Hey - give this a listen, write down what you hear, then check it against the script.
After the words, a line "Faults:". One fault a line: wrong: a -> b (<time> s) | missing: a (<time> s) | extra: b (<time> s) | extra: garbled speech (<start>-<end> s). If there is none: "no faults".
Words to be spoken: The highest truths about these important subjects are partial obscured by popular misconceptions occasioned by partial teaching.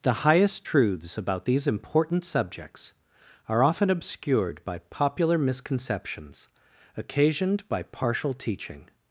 The highest truths about these important subjects are often obscured by popular misconceptions occasioned by partial teaching.
Faults:
wrong: partial -> often (3.6 s)